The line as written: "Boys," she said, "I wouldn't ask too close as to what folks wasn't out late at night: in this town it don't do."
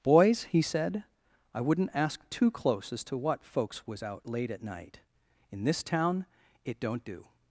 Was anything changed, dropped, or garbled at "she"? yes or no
yes